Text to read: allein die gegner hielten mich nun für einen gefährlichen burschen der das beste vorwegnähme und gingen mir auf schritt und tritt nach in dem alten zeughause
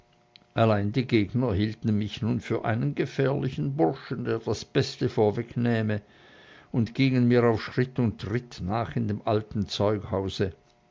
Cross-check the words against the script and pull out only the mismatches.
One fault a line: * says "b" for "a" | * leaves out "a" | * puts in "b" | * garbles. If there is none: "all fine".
all fine